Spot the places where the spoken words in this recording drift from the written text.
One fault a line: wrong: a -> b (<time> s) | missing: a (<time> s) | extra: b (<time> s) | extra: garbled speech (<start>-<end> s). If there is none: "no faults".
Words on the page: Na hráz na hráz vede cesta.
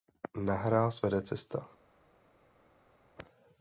missing: na hráz (1.0 s)